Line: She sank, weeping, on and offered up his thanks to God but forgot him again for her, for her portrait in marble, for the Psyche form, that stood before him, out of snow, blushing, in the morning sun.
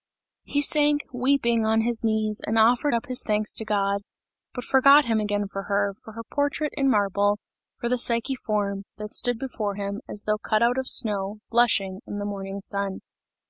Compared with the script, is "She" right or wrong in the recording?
wrong